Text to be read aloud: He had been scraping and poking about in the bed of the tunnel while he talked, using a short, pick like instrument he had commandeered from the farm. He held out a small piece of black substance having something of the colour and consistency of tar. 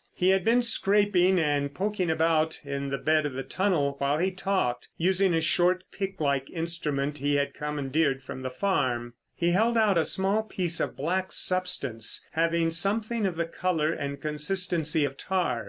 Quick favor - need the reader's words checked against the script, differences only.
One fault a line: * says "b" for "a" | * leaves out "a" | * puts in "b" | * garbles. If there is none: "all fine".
all fine